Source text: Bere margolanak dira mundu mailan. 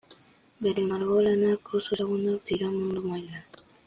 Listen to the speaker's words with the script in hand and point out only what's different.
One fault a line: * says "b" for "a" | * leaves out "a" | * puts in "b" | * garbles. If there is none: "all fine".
* puts in "oso ezagunak"